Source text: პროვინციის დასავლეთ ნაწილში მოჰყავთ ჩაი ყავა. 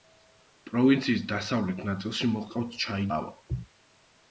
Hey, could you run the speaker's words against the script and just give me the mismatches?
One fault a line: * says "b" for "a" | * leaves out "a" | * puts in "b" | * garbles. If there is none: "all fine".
all fine